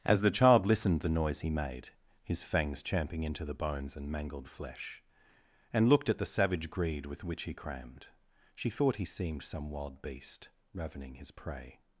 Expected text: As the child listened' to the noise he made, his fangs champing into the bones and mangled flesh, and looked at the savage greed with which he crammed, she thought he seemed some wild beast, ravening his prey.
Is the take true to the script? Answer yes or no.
no